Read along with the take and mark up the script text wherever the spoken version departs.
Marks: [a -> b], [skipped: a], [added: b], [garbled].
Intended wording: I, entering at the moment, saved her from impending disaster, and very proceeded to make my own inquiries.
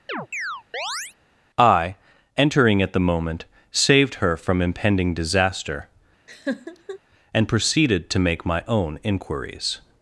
I, entering at the moment, saved her from impending disaster, and [skipped: very] proceeded to make my own inquiries.